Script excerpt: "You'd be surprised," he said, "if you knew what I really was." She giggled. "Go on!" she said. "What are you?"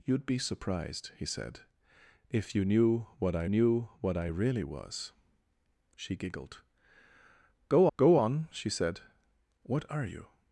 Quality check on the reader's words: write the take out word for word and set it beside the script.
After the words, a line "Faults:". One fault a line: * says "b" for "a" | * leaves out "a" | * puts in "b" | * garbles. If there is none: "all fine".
"You'd be surprised," he said, "if you knew what I knew what I really was." She giggled. "Go go on!" she said. "What are you?"
Faults:
* puts in "knew what I"
* puts in "go"